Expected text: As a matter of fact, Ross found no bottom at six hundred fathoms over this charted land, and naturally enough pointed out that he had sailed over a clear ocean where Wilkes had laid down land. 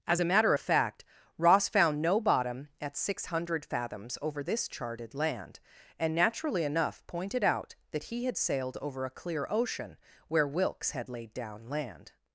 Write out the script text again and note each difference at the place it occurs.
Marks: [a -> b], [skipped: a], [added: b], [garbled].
As a matter of fact, Ross found no bottom at six hundred fathoms over this charted land, and naturally enough pointed out that he had sailed over a clear ocean where Wilkes had laid down land.